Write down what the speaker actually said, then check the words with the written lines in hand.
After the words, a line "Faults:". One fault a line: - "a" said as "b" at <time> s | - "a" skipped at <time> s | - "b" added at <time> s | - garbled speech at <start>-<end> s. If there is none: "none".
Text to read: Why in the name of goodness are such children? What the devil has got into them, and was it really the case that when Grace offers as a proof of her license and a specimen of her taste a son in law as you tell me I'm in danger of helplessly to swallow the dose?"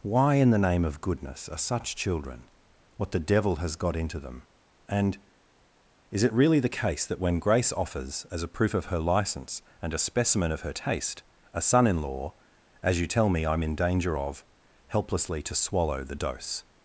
Why in the name of goodness are such children? What the devil has got into them, and is it really the case that when Grace offers as a proof of her license and a specimen of her taste a son in law as you tell me I'm in danger of helplessly to swallow the dose?"
Faults:
- "was" said as "is" at 6.1 s